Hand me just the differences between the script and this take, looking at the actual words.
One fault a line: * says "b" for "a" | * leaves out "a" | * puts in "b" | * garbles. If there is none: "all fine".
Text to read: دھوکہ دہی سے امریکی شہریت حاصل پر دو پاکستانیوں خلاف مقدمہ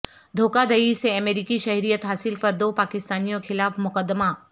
all fine